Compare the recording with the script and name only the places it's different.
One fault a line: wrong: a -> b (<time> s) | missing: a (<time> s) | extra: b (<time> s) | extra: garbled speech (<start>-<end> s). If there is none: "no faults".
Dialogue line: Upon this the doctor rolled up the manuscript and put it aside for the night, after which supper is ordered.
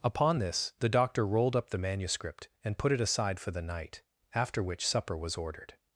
wrong: is -> was (5.2 s)